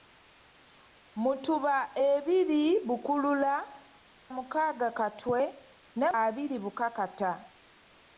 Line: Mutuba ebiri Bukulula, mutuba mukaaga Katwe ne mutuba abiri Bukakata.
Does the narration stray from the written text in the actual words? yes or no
yes